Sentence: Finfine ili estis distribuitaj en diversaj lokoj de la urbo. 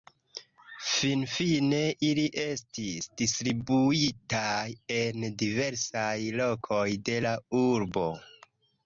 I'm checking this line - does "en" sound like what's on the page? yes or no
yes